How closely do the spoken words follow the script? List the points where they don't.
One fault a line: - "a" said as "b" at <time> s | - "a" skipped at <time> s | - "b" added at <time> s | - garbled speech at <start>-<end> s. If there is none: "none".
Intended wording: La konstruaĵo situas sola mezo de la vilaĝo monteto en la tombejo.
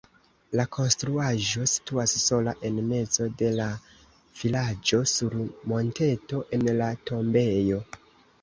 - "en" added at 2.7 s
- "sur" added at 5.2 s